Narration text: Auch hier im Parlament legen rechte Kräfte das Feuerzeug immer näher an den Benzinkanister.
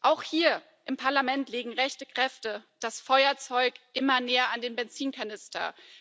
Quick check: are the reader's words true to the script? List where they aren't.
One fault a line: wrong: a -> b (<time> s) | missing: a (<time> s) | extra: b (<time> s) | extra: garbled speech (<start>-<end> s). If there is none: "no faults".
no faults